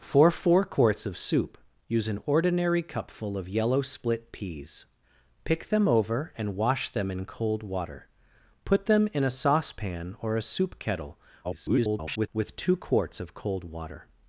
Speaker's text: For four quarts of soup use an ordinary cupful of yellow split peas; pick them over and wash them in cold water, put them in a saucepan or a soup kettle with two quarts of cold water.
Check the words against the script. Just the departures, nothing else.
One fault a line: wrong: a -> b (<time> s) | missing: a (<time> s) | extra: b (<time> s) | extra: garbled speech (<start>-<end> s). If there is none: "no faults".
extra: garbled speech (11.4-12.3 s)